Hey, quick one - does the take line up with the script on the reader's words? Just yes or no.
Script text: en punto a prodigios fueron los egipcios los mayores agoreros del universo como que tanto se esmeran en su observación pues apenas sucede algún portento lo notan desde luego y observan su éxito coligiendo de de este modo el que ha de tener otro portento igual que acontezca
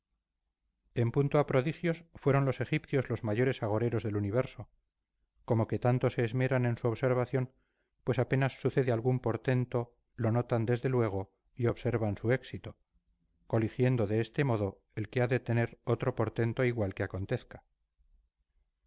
no